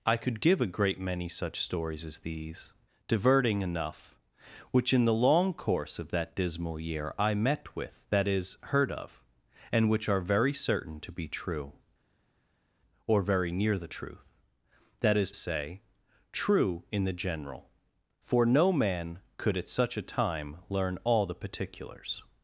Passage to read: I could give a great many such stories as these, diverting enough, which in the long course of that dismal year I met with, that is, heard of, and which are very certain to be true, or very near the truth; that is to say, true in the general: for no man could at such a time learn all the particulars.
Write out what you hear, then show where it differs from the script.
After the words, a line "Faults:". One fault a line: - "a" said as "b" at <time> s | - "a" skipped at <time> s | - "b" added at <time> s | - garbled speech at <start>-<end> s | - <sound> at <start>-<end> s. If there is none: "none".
I could give a great many such stories as these, diverting enough, which in the long course of that dismal year I met with, that is, heard of, and which are very certain to be true, or very near the truth; that is say, true in the general: for no man could at such a time learn all the particulars.
Faults:
- "to" skipped at 15.3 s